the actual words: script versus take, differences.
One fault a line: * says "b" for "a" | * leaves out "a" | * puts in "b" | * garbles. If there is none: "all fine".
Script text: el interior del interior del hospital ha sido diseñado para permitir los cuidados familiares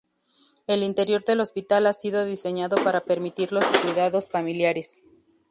* leaves out "interior del"